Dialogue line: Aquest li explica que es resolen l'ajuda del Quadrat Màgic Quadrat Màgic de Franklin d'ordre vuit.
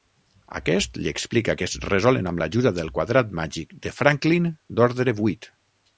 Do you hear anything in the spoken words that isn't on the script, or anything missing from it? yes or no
yes